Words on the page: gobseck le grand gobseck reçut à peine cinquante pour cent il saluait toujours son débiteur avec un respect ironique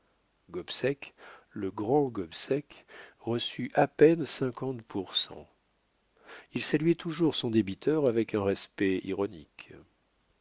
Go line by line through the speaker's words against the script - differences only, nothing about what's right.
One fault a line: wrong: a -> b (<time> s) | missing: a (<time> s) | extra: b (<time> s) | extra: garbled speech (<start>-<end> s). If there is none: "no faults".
no faults